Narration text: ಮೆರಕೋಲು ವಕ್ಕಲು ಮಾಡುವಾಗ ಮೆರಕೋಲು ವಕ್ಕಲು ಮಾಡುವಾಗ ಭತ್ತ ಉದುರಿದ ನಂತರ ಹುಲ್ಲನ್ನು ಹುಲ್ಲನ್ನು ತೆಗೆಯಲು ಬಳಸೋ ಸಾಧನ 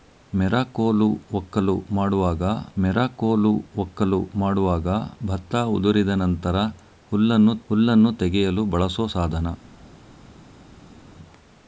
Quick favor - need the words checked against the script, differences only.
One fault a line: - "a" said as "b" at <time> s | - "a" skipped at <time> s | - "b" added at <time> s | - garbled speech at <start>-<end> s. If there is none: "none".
none